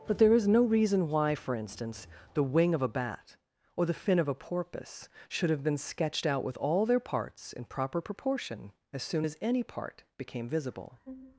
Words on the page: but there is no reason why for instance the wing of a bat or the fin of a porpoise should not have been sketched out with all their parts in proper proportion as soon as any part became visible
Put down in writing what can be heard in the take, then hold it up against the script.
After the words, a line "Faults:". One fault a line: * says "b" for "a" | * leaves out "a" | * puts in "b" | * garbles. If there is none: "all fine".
but there is no reason why for instance the wing of a bat or the fin of a porpoise should have been sketched out with all their parts in proper proportion as soon as any part became visible
Faults:
* leaves out "not"